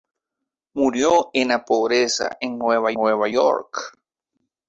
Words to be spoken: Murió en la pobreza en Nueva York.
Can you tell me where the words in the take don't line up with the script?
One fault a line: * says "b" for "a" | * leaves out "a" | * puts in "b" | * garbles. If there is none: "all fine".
* puts in "Nueva"